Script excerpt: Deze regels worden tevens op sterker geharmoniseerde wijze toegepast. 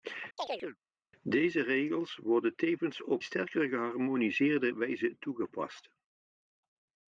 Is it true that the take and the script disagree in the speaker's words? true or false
false